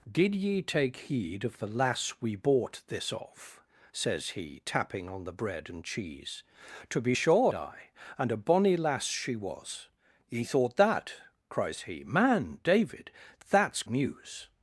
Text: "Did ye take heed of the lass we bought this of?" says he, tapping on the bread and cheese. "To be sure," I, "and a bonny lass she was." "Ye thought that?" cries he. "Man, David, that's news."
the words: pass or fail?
pass